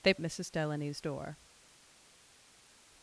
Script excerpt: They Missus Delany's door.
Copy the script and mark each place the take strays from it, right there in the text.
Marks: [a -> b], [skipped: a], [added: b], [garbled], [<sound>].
They Missus Delany's door.